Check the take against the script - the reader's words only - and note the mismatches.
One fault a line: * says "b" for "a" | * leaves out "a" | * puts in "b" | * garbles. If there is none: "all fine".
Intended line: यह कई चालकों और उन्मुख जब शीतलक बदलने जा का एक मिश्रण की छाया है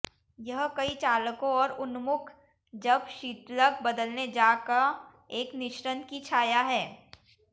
all fine